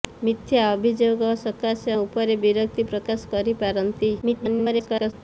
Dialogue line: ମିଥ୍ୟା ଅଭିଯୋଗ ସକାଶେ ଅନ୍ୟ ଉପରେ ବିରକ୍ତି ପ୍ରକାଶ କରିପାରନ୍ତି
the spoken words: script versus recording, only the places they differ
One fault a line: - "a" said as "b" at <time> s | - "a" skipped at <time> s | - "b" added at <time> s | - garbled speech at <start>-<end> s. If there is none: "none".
- "ଅନ୍ୟ" skipped at 1.9 s
- garbled speech at 4.2-5.1 s